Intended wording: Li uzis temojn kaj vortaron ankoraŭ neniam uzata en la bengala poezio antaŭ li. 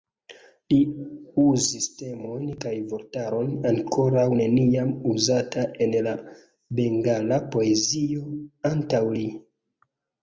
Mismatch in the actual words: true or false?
false